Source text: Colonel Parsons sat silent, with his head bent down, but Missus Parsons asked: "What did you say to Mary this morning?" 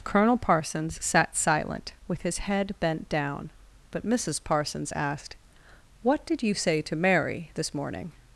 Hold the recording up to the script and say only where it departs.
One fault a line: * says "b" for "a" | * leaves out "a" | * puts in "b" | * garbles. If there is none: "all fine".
all fine